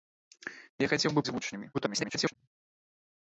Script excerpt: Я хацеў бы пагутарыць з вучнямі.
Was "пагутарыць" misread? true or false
true